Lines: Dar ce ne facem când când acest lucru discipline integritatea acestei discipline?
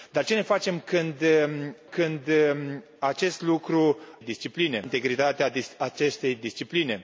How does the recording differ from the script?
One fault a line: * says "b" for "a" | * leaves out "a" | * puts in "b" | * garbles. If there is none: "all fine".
all fine